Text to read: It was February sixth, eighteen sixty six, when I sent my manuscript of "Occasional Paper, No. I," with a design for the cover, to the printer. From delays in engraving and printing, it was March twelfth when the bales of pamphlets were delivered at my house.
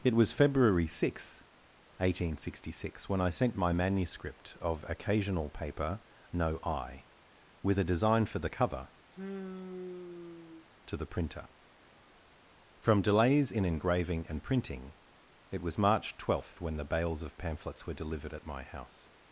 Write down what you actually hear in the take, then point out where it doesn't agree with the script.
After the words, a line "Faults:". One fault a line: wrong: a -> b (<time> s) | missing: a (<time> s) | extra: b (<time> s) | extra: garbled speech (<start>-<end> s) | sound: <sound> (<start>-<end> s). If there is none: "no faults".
It was February sixth, eighteen sixty six, when I sent my manuscript of "Occasional Paper, No. I," with a design for the cover, to the printer. From delays in engraving and printing, it was March twelfth when the bales of pamphlets were delivered at my house.
Faults:
sound: sigh (9.1-10.7 s)